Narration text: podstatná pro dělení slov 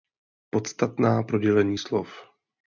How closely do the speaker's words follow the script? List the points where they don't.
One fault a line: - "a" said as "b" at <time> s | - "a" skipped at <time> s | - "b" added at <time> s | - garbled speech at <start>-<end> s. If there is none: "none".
none